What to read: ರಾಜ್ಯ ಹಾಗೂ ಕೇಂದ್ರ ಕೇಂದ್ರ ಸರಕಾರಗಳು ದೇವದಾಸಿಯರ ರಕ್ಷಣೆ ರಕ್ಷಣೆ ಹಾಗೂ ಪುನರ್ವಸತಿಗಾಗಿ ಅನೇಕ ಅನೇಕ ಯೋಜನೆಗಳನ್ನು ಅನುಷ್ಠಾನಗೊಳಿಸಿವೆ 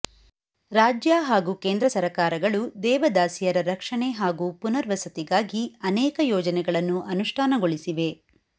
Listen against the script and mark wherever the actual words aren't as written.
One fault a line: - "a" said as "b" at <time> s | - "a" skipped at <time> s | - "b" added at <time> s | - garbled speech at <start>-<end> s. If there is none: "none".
- "ಕೇಂದ್ರ" skipped at 1.9 s
- "ರಕ್ಷಣೆ" skipped at 4.1 s
- "ಅನೇಕ" skipped at 6.2 s